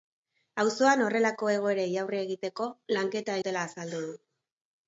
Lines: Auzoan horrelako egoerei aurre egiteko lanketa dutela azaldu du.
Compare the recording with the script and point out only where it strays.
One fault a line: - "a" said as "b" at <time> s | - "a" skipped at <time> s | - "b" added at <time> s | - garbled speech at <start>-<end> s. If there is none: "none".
none